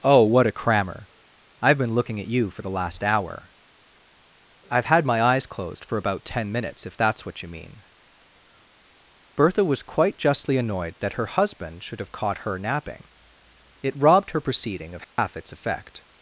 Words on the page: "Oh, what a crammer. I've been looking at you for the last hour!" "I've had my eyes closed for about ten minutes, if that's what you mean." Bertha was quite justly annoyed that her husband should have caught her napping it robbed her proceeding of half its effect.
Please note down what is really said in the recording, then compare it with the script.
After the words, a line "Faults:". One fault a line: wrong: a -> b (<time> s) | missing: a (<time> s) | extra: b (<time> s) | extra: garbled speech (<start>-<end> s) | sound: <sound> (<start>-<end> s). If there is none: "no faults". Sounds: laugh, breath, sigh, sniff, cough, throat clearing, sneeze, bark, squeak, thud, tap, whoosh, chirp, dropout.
"Oh, what a crammer. I've been looking at you for the last hour!" "I've had my eyes closed for about ten minutes, if that's what you mean." Bertha was quite justly annoyed that her husband should have caught her napping it robbed her proceeding of half its effect.
Faults:
sound: dropout (15.0-15.2 s)